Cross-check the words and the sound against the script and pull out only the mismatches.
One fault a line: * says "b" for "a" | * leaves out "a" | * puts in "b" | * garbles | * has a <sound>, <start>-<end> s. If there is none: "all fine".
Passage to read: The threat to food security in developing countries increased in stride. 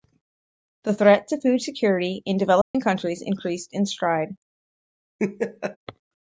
* has a dropout, 2.6-2.7 s
* has a laugh, 5.2-5.8 s